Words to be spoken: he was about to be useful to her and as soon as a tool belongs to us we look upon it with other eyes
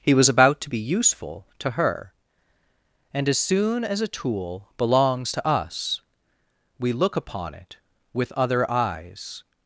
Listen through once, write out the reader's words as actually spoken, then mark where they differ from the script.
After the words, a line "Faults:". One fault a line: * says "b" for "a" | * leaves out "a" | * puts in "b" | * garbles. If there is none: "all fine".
he was about to be useful to her and as soon as a tool belongs to us we look upon it with other eyes
Faults:
all fine